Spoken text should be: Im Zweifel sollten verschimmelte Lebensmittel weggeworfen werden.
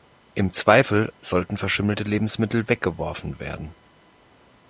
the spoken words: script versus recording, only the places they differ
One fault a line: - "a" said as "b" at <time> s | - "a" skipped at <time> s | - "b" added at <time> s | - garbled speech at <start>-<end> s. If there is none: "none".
none